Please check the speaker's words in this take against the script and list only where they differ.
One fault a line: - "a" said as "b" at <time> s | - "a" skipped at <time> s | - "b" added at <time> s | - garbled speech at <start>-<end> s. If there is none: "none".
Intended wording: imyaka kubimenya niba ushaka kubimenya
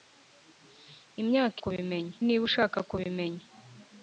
none